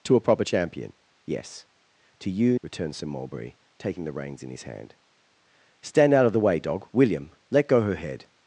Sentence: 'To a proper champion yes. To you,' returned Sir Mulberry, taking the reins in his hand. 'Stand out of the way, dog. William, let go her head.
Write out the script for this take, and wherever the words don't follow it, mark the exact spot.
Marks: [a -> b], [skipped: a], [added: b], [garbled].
'To a proper champion yes. To you,' returned Sir Mulberry, taking the reins in his hand. 'Stand out of the way, dog. William, let go her head.